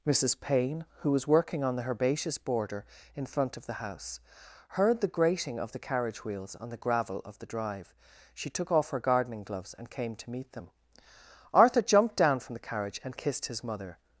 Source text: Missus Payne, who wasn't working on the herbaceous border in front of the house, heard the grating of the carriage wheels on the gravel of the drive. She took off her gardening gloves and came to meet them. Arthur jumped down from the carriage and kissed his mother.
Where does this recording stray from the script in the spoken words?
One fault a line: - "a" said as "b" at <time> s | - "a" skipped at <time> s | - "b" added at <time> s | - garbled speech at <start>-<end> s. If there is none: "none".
- "wasn't" said as "was" at 1.1 s